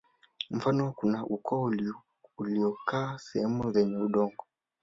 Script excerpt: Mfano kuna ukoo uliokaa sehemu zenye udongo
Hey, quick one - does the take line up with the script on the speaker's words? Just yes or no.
yes